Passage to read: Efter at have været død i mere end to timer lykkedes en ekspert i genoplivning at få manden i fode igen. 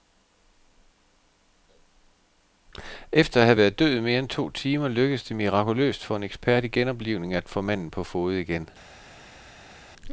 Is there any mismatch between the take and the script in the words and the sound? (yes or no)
yes